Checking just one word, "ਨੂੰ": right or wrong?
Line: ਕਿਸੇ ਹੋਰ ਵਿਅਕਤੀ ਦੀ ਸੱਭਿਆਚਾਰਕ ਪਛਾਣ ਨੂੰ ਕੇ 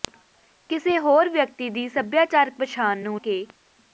right